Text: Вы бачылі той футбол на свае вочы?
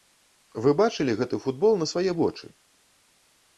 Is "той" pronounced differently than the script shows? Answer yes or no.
yes